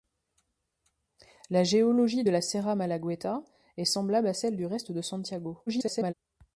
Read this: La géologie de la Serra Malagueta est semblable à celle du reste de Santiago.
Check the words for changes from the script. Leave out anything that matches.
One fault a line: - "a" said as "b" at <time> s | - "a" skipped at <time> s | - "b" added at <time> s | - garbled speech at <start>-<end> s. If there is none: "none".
- garbled speech at 5.7-6.1 s